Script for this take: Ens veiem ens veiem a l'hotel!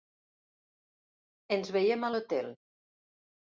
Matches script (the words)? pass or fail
fail